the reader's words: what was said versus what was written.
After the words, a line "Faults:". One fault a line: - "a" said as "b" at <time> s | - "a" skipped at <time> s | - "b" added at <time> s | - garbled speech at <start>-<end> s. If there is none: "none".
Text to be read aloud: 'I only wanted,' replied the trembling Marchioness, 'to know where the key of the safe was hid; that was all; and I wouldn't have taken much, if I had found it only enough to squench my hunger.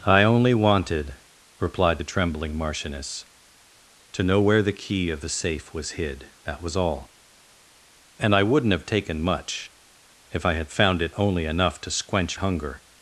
'I only wanted,' replied the trembling Marchioness, 'to know where the key of the safe was hid; that was all; and I wouldn't have taken much, if I had found it only enough to squench hunger.
Faults:
- "my" skipped at 12.4 s